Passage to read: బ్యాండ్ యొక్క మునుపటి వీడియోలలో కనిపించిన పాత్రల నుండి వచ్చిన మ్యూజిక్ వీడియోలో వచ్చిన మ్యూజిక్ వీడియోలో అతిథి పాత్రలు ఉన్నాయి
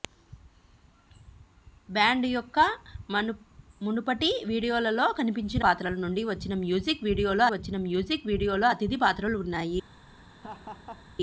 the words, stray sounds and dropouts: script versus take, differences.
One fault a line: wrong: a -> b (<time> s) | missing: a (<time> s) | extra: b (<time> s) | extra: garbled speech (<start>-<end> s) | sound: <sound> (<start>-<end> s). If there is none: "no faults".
sound: laugh (10.3-11.1 s)